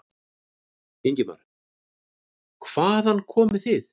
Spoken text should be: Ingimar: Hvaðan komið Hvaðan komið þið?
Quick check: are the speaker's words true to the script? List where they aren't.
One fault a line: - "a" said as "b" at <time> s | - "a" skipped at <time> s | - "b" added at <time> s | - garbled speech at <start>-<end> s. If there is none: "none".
- "Hvaðan komið" skipped at 3.7 s